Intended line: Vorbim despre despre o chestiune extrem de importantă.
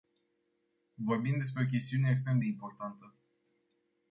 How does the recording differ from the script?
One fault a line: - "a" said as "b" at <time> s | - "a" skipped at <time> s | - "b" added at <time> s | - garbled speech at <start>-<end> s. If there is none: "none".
- "despre" skipped at 1.6 s